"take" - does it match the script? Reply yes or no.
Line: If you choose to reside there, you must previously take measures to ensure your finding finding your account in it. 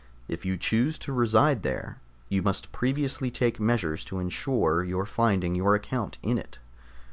yes